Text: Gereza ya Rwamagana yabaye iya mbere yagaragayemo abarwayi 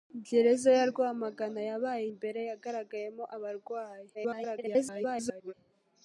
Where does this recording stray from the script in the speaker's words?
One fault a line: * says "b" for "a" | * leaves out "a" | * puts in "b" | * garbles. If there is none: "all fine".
* leaves out "iya"
* garbles